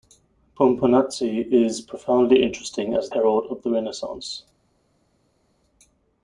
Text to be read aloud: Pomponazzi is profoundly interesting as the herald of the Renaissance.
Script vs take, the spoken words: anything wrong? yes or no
yes